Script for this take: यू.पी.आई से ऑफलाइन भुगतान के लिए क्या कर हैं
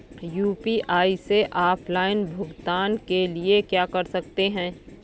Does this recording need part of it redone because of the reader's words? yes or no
yes